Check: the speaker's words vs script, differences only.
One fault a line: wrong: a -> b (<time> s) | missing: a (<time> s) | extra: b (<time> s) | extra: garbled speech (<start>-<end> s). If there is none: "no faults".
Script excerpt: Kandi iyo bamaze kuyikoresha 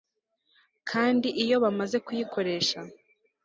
no faults